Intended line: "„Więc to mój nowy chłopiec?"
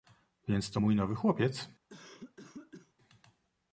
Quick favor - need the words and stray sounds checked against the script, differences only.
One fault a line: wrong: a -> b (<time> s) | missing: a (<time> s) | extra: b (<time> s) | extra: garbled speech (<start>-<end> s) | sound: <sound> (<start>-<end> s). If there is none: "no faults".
sound: cough (1.9-2.9 s)